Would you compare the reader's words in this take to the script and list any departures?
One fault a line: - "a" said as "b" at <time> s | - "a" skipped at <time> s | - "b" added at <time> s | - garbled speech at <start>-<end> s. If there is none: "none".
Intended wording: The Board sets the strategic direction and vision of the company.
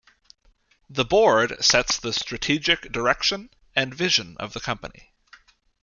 none